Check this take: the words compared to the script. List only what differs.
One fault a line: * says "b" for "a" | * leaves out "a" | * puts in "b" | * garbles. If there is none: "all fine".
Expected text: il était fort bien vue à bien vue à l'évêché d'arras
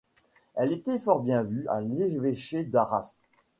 * says "elle" for "il"
* leaves out "bien vue à"